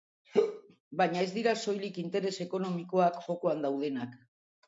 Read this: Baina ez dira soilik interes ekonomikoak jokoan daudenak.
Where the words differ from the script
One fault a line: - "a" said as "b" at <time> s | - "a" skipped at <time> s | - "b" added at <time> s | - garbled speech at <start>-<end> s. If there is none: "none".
none